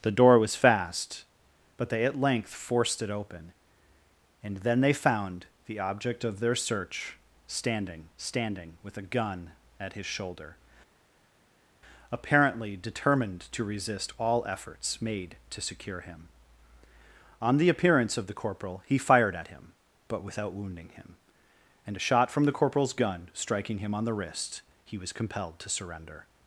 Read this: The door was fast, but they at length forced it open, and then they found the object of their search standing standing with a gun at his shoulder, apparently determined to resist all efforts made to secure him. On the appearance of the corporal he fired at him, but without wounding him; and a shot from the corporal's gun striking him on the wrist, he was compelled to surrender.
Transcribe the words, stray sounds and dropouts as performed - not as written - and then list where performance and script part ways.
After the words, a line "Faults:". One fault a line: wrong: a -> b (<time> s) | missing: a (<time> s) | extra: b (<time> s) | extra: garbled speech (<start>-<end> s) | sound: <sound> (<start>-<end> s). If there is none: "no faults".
The door was fast, but they at length forced it open, and then they found the object of their search standing standing with a gun at his shoulder, apparently determined to resist all efforts made to secure him. On the appearance of the corporal he fired at him, but without wounding him; and a shot from the corporal's gun striking him on the wrist, he was compelled to surrender.
Faults:
no faults